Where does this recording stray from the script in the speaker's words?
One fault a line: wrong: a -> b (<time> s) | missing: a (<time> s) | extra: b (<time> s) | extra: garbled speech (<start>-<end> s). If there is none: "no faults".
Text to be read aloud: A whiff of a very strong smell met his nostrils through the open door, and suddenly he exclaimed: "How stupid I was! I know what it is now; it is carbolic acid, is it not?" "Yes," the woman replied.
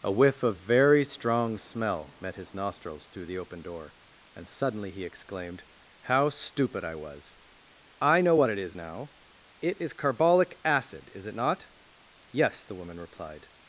missing: a (0.6 s)